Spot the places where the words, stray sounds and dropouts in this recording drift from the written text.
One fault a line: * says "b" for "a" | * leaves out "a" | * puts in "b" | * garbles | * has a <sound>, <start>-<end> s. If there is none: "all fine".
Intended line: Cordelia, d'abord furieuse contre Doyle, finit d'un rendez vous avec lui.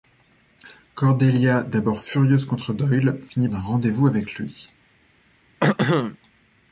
* has a throat clearing, 5.6-6.2 s